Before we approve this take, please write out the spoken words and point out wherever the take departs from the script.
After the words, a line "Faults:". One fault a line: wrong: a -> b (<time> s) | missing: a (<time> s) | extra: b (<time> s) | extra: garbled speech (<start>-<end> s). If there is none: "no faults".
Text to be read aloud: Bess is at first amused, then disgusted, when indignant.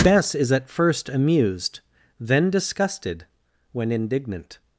Bess is at first amused, then disgusted, when indignant.
Faults:
no faults